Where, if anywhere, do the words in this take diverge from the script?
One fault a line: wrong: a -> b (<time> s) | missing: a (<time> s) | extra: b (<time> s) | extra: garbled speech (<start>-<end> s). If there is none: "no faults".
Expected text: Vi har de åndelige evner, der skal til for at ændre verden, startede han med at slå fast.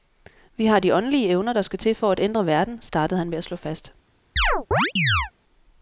no faults